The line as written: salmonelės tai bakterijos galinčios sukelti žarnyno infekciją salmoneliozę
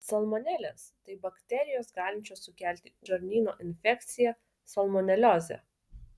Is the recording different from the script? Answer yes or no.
no